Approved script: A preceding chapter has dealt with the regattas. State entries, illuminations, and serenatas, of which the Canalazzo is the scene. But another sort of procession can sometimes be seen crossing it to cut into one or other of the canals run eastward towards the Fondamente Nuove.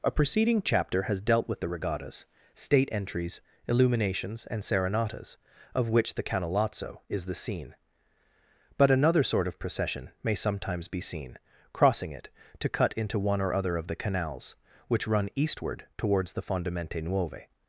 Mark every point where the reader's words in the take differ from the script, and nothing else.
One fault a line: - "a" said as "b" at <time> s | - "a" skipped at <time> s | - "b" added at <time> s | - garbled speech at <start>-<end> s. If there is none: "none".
- "can" said as "may" at 10.2 s
- "which" added at 14.9 s